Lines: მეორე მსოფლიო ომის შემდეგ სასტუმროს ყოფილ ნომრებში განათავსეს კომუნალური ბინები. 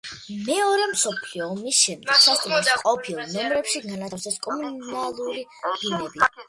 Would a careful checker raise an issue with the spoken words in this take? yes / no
no